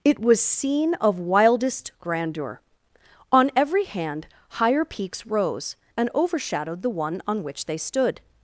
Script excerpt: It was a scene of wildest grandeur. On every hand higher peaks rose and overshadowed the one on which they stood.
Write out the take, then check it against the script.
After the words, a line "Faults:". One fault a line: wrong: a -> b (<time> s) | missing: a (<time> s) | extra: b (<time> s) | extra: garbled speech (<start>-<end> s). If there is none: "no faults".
It was scene of wildest grandeur. On every hand higher peaks rose and overshadowed the one on which they stood.
Faults:
missing: a (0.4 s)